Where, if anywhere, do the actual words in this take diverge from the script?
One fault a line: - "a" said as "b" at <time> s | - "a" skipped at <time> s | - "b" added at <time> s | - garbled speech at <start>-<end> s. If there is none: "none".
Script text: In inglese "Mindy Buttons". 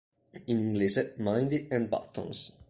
- "and" added at 1.7 s